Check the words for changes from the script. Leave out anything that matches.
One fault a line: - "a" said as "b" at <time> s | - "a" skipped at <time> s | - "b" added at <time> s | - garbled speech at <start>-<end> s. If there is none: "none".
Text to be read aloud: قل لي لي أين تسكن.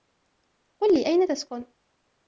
- "لي" skipped at 1.1 s